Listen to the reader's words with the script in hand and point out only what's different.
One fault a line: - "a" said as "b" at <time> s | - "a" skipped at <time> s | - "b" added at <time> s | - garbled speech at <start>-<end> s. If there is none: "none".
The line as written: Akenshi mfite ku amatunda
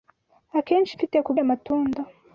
none